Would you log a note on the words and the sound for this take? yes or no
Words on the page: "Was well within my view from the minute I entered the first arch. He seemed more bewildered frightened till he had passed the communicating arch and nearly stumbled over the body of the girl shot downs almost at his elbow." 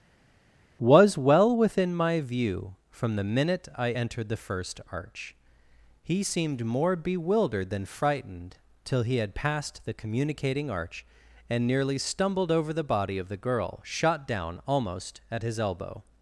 yes